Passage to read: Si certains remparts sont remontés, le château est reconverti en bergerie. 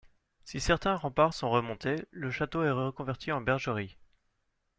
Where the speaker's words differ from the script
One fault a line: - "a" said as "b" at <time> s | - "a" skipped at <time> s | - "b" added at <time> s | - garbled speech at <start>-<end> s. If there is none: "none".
none